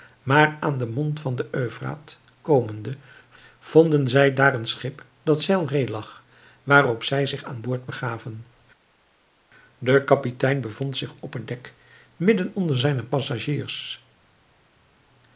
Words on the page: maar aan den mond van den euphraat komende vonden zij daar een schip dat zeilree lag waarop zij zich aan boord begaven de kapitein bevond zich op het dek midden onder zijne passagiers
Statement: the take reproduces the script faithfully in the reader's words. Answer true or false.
true